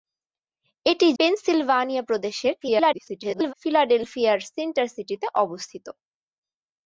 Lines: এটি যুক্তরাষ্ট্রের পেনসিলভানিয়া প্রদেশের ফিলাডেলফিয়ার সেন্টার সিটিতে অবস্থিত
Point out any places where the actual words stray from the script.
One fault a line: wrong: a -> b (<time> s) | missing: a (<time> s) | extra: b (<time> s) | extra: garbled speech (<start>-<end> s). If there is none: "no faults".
missing: যুক্তরাষ্ট্রের (1.1 s)
extra: garbled speech (2.6-3.5 s)